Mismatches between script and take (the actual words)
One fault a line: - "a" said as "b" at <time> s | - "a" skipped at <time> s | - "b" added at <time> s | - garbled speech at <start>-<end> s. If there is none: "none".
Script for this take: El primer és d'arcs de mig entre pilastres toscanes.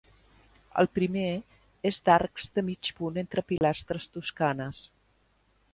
- "punt" added at 3.0 s